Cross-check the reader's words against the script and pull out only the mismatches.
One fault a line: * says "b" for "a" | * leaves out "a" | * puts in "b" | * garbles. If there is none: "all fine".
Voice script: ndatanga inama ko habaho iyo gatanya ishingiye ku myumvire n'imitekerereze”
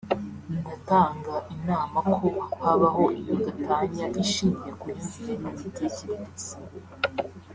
all fine